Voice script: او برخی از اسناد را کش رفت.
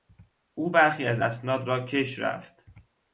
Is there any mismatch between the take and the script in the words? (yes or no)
no